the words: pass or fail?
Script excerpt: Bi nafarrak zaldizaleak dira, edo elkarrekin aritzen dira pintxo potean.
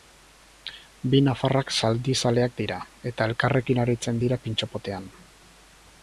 fail